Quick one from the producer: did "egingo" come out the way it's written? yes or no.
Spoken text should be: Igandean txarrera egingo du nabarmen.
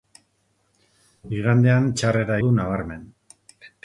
no